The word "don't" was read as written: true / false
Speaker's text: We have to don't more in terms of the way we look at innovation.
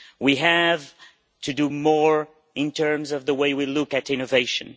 false